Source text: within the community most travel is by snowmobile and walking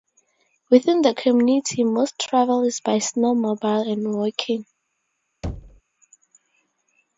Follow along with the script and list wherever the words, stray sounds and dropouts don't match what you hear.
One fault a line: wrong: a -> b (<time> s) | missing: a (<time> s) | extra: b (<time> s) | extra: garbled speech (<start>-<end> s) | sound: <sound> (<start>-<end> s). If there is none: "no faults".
sound: thud (5.4-5.8 s)